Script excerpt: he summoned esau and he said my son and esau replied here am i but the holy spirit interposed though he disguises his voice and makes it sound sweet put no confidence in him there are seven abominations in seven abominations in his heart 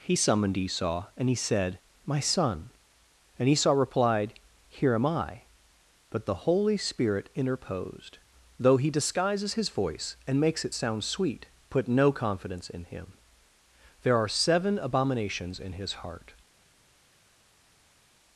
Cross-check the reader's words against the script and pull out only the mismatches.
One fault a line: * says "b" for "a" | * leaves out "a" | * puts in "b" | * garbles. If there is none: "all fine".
* leaves out "seven abominations in"